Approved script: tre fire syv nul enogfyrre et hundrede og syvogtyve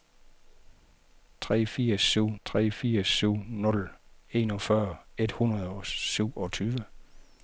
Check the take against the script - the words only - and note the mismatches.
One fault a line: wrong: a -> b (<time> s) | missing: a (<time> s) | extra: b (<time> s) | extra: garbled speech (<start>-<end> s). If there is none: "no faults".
extra: tre fire syv (2.5 s)